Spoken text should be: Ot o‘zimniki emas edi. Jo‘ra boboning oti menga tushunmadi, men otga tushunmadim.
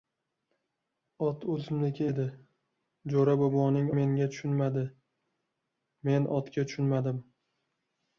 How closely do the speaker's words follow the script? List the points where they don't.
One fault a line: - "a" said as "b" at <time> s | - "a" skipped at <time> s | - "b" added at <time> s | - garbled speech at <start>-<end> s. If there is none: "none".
- "emas" skipped at 2.1 s
- "oti" skipped at 3.9 s